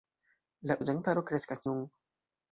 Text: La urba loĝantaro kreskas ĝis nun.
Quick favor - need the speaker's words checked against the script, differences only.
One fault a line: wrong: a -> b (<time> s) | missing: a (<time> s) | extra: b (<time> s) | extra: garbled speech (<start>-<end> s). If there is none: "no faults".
missing: urba (0.8 s)
missing: ĝis (1.7 s)